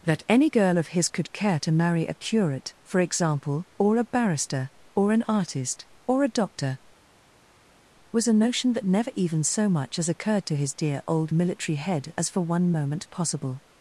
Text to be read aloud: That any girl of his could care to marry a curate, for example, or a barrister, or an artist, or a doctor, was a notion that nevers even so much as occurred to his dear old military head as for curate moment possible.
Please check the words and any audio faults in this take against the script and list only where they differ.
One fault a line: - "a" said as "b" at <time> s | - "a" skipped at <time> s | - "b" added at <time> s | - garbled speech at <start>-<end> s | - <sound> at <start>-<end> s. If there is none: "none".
- "nevers" said as "never" at 8.9 s
- "curate" said as "one" at 12.4 s